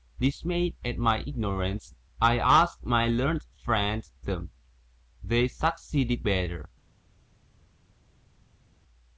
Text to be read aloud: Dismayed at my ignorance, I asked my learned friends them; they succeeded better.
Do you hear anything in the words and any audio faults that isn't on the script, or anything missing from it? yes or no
no